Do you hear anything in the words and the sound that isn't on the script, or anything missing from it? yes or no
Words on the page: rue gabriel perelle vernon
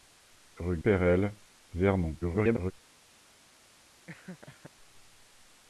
yes